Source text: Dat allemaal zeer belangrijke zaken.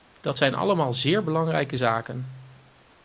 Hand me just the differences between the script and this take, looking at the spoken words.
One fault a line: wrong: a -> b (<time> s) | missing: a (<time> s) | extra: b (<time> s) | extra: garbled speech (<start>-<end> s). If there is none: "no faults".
extra: zijn (0.4 s)